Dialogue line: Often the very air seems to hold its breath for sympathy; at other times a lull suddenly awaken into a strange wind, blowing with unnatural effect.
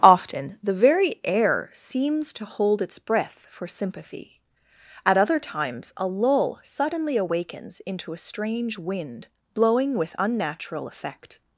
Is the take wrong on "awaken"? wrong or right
wrong